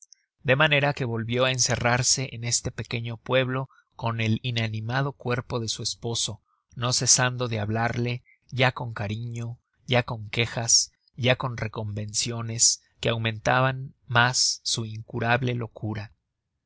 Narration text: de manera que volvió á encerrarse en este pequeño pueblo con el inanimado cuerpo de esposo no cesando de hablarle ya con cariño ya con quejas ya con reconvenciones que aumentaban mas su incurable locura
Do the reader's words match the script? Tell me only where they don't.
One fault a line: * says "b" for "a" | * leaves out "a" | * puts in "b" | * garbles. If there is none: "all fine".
* puts in "su"